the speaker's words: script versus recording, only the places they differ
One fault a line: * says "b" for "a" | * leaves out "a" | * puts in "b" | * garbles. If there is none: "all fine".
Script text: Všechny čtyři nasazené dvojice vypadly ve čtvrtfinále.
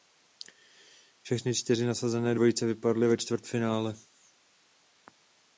all fine